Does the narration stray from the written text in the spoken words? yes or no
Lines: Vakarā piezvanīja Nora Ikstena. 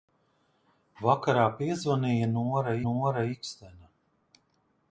yes